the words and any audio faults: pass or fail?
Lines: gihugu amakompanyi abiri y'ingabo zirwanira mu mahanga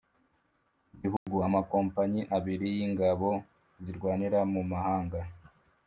fail